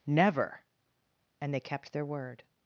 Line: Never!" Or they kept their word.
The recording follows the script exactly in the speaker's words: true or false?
false